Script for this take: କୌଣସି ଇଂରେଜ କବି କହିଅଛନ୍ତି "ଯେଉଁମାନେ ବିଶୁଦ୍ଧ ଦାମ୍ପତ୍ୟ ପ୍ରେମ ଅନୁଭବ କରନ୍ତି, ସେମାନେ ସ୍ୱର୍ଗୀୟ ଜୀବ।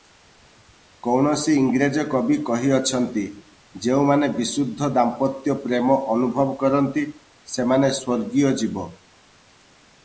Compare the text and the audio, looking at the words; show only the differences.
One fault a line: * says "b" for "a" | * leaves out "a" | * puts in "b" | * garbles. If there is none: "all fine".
all fine